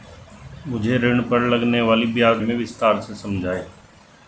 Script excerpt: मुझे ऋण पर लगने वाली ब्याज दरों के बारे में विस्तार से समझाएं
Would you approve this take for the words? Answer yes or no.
no